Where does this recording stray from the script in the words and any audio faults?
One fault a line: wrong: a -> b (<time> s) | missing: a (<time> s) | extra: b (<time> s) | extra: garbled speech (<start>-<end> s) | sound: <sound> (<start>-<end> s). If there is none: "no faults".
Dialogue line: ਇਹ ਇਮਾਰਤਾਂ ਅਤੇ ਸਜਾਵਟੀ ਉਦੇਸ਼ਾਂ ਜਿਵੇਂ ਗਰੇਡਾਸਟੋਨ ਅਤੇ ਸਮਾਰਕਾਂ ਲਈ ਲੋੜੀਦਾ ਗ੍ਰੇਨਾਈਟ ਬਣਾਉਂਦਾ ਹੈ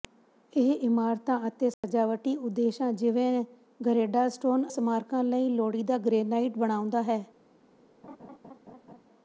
sound: dropout (1.7-1.8 s)
missing: ਅਤੇ (4.7 s)
sound: laugh (8.0-9.0 s)